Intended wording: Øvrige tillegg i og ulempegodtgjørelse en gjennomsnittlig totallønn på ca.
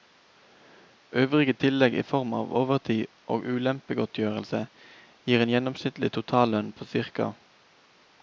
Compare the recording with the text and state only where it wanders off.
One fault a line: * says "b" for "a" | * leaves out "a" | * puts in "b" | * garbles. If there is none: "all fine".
* puts in "form av overtid"
* puts in "gir"